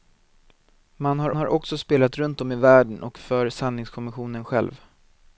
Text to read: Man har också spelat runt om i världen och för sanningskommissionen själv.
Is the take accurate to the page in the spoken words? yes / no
no